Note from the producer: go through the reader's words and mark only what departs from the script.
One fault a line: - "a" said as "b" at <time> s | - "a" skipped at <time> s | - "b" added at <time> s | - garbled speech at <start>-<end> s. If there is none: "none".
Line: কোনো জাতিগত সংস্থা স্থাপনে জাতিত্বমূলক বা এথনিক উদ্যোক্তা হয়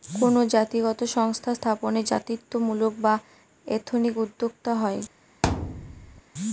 none